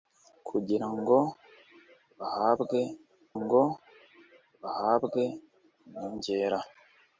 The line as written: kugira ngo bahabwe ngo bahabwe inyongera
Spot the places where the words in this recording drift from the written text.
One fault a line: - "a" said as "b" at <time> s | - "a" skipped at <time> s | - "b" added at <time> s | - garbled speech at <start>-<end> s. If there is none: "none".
none